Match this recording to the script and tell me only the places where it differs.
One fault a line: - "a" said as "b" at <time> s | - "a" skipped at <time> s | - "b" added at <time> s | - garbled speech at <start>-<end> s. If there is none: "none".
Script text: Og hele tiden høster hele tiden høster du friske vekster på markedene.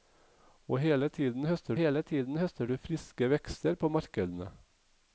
none